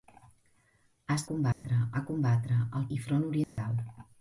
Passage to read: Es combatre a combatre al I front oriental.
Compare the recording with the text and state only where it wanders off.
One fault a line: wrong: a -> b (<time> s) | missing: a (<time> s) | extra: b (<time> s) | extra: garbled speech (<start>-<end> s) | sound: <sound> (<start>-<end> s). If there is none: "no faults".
sound: dropout (1.5-1.6 s)
sound: dropout (3.4-3.6 s)